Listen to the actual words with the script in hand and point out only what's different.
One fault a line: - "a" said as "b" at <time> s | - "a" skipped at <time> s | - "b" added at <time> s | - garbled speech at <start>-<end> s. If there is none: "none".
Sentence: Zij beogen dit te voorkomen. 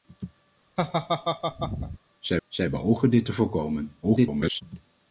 - "zij" added at 2.5 s
- garbled speech at 4.0-4.6 s